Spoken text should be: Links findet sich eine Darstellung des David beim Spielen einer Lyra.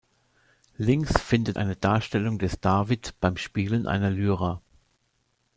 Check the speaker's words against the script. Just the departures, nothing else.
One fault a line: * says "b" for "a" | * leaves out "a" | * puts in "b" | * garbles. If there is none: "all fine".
* leaves out "sich"